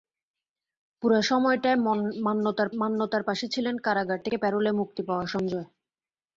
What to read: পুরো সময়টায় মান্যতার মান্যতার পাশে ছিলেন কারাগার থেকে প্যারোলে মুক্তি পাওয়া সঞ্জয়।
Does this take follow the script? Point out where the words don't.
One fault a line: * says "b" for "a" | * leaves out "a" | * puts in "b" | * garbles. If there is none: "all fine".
all fine